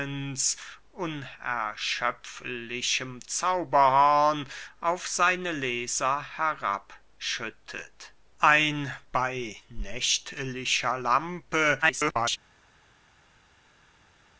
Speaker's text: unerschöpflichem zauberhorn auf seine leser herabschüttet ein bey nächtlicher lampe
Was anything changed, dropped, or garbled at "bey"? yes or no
no